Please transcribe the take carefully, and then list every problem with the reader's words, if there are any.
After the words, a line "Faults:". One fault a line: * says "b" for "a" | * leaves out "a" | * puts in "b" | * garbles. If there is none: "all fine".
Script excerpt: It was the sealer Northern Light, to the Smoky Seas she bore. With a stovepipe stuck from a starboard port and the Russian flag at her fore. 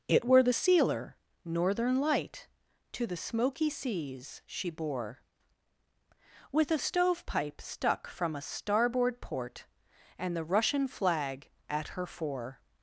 It were the sealer Northern Light, to the Smoky Seas she bore. With a stovepipe stuck from a starboard port and the Russian flag at her fore.
Faults:
* says "were" for "was"